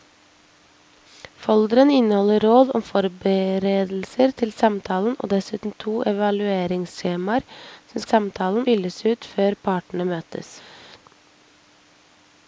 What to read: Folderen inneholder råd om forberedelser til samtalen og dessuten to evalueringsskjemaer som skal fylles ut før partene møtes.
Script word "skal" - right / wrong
wrong